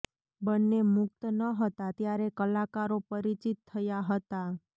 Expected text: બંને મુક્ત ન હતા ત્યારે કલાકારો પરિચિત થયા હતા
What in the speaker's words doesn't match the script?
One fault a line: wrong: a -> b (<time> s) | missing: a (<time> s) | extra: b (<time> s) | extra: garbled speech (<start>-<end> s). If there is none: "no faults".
no faults